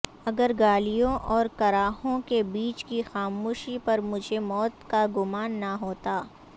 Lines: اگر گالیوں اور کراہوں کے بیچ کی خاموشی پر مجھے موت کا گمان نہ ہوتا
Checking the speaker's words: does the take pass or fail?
pass